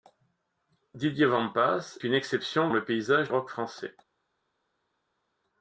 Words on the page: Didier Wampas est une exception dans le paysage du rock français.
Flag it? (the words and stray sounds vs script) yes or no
yes